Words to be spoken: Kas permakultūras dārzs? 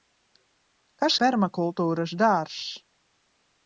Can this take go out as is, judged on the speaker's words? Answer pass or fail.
pass